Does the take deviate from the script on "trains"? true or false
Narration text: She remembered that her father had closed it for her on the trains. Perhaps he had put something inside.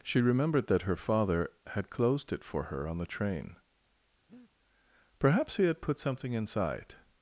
true